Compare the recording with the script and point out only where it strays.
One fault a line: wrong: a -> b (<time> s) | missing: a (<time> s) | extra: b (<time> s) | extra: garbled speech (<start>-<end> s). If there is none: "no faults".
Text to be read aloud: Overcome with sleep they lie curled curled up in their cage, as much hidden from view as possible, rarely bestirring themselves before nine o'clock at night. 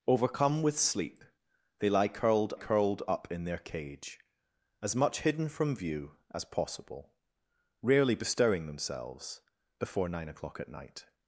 no faults